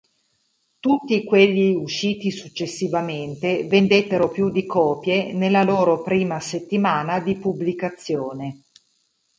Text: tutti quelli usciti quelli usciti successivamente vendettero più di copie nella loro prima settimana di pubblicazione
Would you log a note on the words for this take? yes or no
yes